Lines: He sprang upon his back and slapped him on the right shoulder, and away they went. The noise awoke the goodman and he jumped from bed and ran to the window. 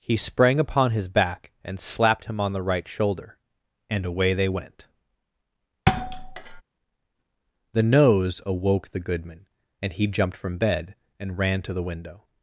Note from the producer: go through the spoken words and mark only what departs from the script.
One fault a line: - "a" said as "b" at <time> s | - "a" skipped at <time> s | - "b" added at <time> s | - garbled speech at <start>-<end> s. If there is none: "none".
- "noise" said as "nose" at 7.8 s